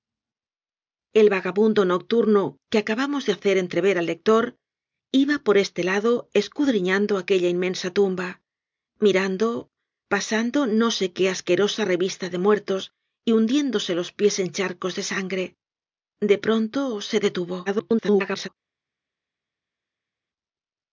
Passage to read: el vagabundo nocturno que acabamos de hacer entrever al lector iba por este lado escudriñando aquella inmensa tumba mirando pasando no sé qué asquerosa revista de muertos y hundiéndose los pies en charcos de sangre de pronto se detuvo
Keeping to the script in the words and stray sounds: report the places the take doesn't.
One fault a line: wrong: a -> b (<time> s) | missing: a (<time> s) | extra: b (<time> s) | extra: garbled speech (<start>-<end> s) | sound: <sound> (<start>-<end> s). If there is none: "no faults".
extra: garbled speech (17.7-18.5 s)